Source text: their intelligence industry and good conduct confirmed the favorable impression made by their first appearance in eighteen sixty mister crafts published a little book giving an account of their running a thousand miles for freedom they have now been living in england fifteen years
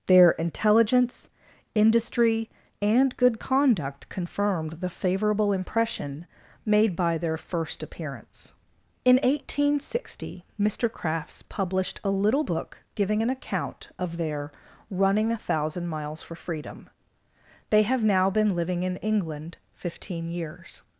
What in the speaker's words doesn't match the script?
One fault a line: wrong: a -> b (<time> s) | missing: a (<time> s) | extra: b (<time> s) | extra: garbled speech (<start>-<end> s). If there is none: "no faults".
no faults